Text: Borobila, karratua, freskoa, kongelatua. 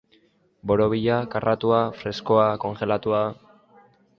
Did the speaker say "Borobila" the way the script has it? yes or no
yes